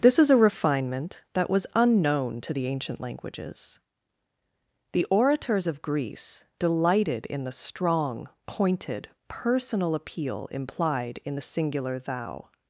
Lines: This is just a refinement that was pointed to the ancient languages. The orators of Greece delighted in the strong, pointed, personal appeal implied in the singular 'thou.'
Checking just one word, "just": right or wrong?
wrong